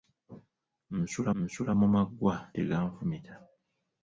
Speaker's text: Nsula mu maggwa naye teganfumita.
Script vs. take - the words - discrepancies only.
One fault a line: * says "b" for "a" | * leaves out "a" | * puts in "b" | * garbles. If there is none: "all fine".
* puts in "nsula"
* leaves out "naye"